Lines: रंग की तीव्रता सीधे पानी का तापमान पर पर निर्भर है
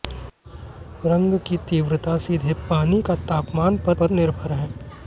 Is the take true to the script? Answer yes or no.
yes